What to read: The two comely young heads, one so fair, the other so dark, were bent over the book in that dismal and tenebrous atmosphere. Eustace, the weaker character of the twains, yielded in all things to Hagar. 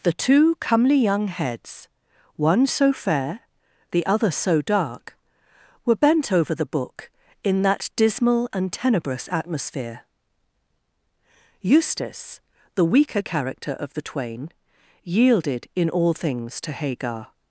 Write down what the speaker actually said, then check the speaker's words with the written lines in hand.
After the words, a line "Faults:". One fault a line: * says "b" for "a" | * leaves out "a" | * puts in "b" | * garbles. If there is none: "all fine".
The two comely young heads, one so fair, the other so dark, were bent over the book in that dismal and tenebrous atmosphere. Eustace, the weaker character of the twain, yielded in all things to Hagar.
Faults:
* says "twain" for "twains"